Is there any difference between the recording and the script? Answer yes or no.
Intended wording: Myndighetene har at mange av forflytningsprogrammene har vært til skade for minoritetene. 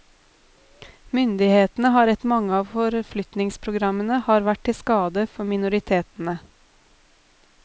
no